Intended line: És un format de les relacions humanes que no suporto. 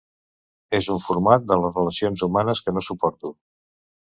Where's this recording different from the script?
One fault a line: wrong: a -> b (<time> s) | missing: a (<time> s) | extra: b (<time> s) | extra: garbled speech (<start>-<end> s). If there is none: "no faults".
no faults